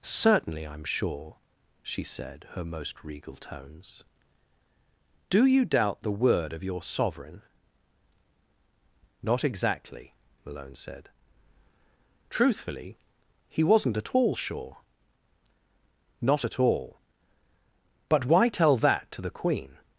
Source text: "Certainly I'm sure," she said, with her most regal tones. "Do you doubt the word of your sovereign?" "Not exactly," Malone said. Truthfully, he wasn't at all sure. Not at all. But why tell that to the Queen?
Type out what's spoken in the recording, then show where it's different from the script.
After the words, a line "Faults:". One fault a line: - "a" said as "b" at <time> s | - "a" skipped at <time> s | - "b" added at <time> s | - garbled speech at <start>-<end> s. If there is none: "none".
"Certainly I'm sure," she said, her most regal tones. "Do you doubt the word of your sovereign?" "Not exactly," Malone said. Truthfully, he wasn't at all sure. Not at all. But why tell that to the Queen?
Faults:
- "with" skipped at 2.5 s